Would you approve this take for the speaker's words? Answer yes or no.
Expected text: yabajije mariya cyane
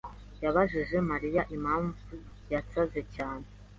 no